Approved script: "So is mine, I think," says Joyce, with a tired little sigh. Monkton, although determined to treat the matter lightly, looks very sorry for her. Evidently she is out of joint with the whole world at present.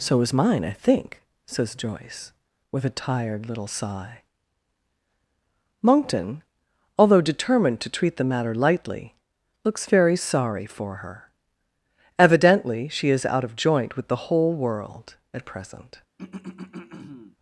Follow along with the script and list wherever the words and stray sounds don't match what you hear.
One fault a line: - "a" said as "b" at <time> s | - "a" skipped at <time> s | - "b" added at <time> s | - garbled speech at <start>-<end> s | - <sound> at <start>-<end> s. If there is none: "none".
- throat clearing at 16.2-17.4 s